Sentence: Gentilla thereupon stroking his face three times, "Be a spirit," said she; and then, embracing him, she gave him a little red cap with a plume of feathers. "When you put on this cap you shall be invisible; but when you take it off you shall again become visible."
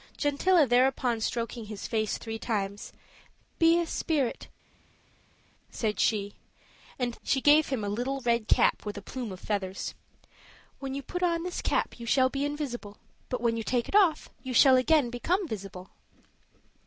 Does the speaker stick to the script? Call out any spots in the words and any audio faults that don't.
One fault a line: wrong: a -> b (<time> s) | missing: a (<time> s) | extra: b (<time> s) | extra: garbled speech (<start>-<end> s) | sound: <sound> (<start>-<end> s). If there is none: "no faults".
missing: then embracing him (7.1 s)